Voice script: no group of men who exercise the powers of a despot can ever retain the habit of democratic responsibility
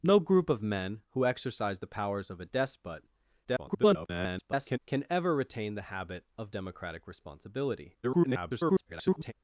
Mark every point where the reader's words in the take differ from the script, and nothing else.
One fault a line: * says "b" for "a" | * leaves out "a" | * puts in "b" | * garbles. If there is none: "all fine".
* garbles
* garbles